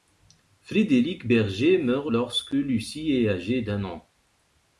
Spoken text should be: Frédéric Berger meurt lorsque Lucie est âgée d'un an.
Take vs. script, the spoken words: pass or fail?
pass